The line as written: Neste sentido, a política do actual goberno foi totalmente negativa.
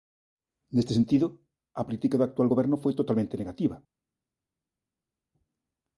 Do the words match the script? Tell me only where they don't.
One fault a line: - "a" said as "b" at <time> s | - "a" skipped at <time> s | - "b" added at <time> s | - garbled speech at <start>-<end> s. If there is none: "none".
none